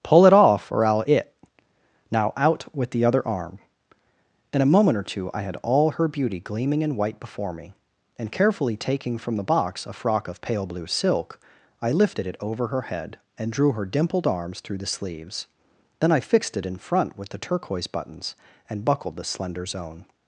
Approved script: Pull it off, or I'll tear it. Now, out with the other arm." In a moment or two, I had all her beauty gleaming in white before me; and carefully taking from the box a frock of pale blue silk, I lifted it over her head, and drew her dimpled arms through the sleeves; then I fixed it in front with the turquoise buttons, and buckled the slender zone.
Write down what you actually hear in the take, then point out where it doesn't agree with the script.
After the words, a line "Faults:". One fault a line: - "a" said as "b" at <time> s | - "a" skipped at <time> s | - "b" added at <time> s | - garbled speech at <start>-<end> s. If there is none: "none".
Pull it off, or I'll it. Now, out with the other arm." In a moment or two, I had all her beauty gleaming in white before me; and carefully taking from the box a frock of pale blue silk, I lifted it over her head, and drew her dimpled arms through the sleeves; then I fixed it in front with the turquoise buttons, and buckled the slender zone.
Faults:
- "tear" skipped at 1.1 s